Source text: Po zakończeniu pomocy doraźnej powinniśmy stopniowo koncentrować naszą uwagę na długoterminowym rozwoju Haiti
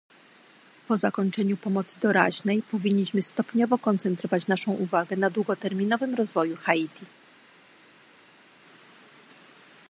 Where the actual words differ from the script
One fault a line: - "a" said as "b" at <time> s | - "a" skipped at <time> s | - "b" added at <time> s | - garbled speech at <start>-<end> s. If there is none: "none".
none